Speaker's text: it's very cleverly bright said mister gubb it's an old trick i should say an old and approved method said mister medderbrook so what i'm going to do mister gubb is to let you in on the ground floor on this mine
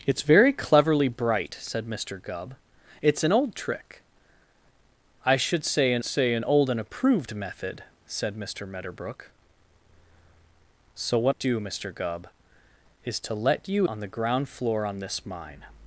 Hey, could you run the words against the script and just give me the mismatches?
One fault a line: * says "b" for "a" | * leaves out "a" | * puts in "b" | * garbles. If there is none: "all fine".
* puts in "say an"
* leaves out "i'm going to"
* leaves out "in"